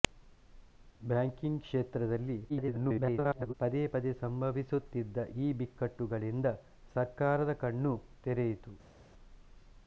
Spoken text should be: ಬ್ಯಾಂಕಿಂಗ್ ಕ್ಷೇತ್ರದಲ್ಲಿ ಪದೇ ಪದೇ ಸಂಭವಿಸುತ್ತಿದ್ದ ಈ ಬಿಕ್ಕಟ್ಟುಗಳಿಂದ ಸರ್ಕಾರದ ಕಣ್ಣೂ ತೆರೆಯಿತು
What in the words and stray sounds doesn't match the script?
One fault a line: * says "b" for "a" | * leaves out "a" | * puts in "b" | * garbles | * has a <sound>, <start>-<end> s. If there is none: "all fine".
* garbles